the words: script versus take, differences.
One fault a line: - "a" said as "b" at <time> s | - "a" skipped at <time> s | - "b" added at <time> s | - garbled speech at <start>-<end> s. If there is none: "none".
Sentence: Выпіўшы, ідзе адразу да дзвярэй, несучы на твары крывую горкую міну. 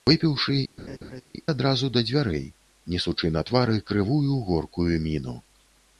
- "ідзе" skipped at 0.5 s